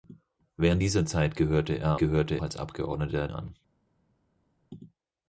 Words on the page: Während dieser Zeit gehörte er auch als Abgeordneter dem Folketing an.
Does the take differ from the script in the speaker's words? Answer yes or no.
yes